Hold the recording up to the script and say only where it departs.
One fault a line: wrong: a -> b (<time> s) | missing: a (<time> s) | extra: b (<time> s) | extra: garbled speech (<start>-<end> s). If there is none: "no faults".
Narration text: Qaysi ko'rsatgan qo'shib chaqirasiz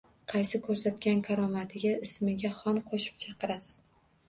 extra: karomatiga ismiga xon (1.3 s)